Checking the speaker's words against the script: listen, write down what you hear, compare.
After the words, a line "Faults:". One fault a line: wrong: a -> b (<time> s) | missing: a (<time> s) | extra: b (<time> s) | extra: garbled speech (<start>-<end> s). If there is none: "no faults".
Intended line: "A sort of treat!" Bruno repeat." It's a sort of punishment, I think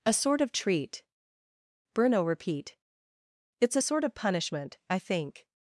"A sort of treat!" Bruno repeat." It's a sort of punishment, I think
Faults:
no faults